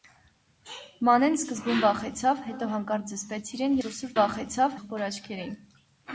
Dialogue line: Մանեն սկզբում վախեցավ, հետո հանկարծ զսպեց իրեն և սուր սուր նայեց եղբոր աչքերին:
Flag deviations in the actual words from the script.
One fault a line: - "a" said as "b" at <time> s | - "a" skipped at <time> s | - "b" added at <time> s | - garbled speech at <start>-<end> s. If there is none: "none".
- "և" skipped at 3.8 s
- "նայեց" said as "վախեցավ" at 4.2 s